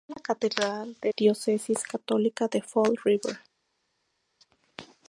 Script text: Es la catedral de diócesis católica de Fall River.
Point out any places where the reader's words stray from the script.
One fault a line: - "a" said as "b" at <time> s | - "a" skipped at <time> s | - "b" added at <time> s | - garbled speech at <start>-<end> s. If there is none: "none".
none